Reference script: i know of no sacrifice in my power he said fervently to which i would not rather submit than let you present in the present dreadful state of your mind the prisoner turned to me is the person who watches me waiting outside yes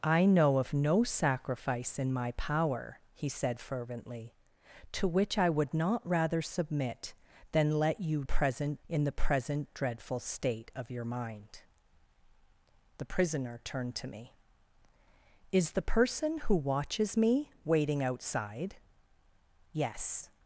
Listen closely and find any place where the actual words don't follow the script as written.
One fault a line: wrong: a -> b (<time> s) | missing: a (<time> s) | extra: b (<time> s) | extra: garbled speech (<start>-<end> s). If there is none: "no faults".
no faults